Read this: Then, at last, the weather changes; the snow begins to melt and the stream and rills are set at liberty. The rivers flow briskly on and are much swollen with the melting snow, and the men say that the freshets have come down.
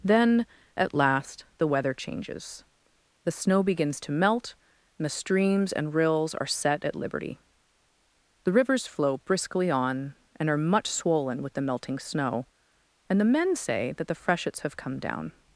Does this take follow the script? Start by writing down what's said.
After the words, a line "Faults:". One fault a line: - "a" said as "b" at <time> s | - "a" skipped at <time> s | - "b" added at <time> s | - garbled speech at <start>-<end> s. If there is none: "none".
Then, at last, the weather changes; the snow begins to melt and the streams and rills are set at liberty. The rivers flow briskly on and are much swollen with the melting snow, and the men say that the freshets have come down.
Faults:
- "stream" said as "streams" at 5.1 s